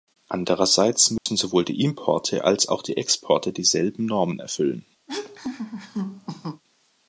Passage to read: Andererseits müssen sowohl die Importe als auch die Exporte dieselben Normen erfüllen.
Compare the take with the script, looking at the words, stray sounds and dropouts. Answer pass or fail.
fail